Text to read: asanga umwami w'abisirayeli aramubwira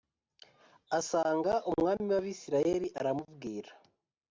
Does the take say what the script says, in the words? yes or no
yes